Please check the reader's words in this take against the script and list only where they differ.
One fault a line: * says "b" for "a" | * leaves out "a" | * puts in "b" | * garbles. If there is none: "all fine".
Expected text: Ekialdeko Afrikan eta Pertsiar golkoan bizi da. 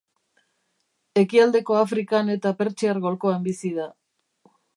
all fine